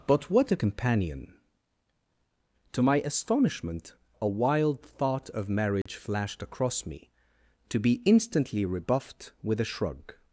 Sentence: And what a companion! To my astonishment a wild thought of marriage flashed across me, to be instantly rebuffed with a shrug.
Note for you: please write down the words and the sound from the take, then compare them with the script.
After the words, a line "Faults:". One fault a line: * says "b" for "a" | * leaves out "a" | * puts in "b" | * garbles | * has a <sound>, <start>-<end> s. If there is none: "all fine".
But what a companion! To my astonishment a wild thought of marriage flashed across me, to be instantly rebuffed with a shrug.
Faults:
* says "But" for "And"
* has a dropout, 5.8-5.9 s